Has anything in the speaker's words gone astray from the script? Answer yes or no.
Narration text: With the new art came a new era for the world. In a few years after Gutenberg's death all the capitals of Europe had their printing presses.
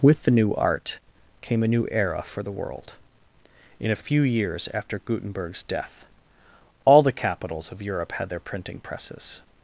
no